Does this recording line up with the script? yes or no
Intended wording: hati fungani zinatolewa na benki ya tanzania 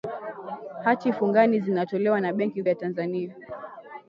yes